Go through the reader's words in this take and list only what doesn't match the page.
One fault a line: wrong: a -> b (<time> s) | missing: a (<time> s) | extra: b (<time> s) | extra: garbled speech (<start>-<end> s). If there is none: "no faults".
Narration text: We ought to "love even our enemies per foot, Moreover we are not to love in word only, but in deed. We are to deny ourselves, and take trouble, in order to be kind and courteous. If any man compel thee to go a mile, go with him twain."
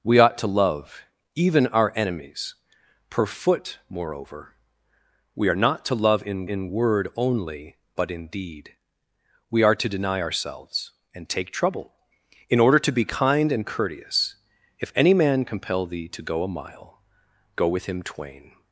extra: in (6.5 s)